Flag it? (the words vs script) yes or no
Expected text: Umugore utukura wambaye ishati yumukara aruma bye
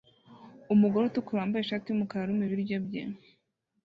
yes